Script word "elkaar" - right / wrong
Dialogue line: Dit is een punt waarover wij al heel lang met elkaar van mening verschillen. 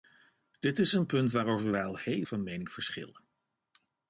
wrong